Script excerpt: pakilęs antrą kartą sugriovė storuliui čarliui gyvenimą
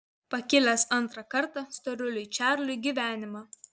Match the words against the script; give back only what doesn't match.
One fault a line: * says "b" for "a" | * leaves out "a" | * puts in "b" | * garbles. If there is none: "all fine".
* leaves out "sugriovė"